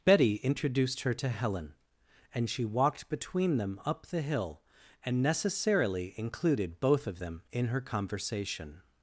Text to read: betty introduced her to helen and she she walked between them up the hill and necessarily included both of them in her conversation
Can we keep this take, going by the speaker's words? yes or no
no